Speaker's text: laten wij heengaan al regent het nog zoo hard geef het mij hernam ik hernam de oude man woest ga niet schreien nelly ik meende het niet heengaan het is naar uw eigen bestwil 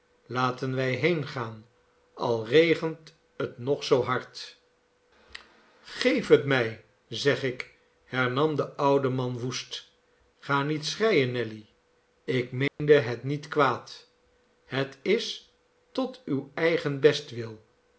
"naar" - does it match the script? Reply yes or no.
no